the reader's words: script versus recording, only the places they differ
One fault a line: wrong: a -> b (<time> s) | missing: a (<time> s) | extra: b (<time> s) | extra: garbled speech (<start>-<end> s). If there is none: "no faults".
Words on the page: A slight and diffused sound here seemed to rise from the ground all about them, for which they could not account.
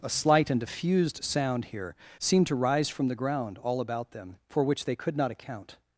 no faults